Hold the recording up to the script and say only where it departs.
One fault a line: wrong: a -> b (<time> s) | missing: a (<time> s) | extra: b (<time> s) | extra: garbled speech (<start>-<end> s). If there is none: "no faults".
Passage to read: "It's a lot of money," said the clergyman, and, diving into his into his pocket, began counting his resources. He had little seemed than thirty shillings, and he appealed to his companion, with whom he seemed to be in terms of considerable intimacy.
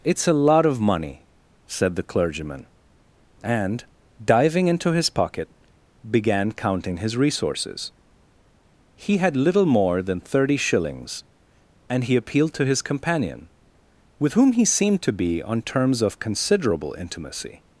missing: into his (5.1 s)
wrong: seemed -> more (9.7 s)
wrong: in -> on (15.4 s)